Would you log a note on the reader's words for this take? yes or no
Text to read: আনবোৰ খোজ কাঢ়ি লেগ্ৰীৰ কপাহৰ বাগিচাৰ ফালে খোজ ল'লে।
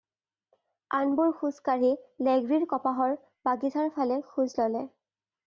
no